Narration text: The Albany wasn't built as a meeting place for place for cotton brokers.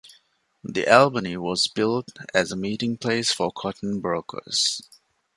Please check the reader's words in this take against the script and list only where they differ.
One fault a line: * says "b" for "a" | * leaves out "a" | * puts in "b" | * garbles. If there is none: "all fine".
* says "was" for "wasn't"
* leaves out "place for"